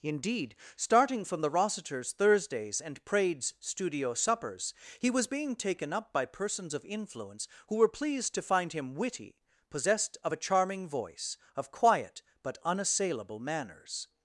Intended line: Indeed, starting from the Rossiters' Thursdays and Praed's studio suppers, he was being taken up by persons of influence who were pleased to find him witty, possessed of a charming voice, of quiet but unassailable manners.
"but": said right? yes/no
yes